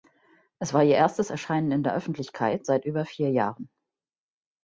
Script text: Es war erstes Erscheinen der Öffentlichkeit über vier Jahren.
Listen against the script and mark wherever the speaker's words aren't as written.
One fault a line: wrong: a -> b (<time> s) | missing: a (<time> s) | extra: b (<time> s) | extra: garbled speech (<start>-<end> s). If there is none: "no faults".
extra: ihr (0.8 s)
extra: in (1.7 s)
extra: seit (2.6 s)